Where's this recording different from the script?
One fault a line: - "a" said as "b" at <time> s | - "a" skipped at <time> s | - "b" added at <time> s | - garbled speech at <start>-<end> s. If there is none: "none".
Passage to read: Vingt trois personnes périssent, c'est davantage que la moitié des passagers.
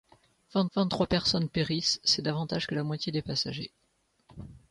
- "vingt" added at 0.7 s